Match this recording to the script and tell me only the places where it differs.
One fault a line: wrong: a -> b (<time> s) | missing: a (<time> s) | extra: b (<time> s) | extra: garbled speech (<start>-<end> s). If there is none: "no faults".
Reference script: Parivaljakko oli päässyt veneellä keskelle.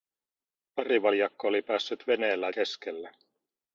no faults